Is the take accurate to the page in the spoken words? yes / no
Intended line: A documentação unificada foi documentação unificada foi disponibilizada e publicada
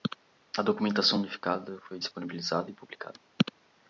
no